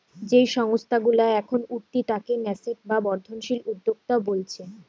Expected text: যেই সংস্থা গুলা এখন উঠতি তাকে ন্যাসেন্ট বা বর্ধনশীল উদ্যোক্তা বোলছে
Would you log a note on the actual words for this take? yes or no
no